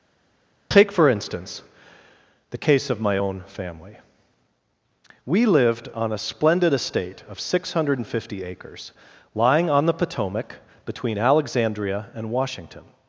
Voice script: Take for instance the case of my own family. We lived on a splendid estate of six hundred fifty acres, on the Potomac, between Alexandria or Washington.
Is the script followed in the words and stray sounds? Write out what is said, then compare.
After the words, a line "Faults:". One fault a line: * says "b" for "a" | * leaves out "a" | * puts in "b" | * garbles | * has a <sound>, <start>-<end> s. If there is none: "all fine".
Take for instance the case of my own family. We lived on a splendid estate of six hundred fifty acres, lying on the Potomac, between Alexandria and Washington.
Faults:
* puts in "lying"
* says "and" for "or"